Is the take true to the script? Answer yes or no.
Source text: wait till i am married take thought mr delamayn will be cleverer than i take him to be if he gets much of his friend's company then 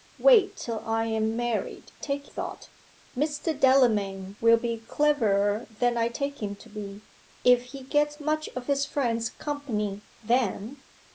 yes